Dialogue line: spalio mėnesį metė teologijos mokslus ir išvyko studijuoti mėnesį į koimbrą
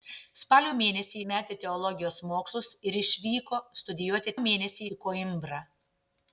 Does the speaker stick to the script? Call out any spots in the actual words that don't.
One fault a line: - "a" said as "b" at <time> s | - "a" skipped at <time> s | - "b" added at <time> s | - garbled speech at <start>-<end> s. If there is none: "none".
none